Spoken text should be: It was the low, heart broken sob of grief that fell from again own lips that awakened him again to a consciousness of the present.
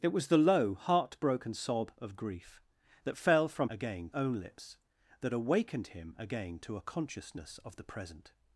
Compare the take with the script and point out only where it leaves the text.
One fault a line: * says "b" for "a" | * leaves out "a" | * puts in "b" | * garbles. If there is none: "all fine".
all fine